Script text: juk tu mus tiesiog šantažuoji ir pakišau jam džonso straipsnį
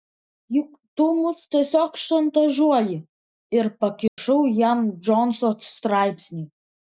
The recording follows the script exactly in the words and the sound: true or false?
false